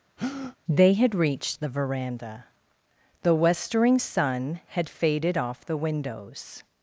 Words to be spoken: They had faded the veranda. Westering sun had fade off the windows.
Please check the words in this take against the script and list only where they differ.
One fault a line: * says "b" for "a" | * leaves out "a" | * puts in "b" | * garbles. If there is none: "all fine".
* says "reached" for "faded"
* puts in "The"
* says "faded" for "fade"